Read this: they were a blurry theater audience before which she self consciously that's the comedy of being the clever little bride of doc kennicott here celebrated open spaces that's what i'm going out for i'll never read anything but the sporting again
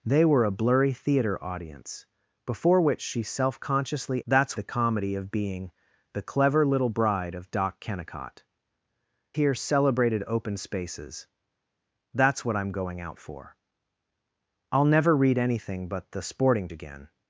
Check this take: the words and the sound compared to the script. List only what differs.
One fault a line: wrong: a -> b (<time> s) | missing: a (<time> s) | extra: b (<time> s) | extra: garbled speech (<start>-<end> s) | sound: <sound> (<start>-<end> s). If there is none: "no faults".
no faults